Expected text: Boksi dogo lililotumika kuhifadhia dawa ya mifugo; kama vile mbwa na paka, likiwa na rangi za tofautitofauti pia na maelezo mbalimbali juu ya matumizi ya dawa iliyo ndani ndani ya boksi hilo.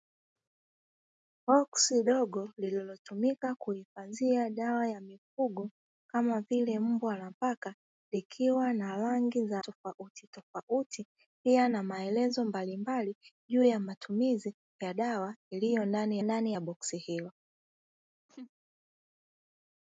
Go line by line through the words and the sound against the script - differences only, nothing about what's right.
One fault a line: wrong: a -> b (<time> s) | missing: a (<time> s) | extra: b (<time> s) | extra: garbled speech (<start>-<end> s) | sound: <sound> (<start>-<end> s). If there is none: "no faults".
sound: laugh (18.3-18.5 s)